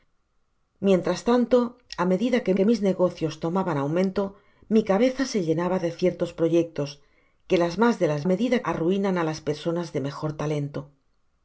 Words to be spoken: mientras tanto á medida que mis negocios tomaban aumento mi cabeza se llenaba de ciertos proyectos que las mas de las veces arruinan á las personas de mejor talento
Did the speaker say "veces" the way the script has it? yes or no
no